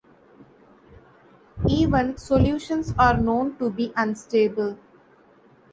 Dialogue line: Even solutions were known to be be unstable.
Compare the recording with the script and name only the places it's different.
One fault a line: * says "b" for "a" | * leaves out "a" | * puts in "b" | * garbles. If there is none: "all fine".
* says "are" for "were"
* leaves out "be"